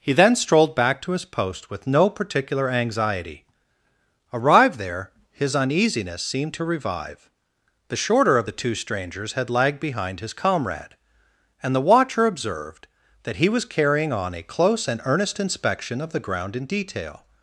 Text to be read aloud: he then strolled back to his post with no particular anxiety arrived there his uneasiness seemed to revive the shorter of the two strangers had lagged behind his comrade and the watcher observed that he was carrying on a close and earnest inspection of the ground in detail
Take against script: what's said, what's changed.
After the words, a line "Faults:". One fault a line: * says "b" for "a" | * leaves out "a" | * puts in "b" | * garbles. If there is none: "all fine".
he then strolled back to his post with no particular anxiety arrived there his uneasiness seemed to revive the shorter of the two strangers had lagged behind his comrade and the watcher observed that he was carrying on a close and earnest inspection of the ground in detail
Faults:
all fine